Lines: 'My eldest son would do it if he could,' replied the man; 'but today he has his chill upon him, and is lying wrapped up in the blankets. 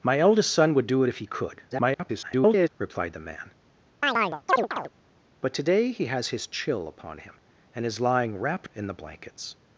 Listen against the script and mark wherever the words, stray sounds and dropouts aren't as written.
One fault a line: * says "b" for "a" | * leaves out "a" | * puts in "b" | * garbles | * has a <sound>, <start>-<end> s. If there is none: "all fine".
* garbles
* has a chirp, 4.0-4.9 s
* leaves out "up"